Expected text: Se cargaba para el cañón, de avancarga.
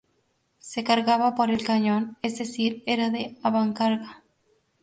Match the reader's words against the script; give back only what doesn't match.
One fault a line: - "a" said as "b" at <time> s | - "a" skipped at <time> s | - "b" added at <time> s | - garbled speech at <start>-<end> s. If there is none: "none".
- "para" said as "por" at 1.3 s
- "es decir era" added at 2.2 s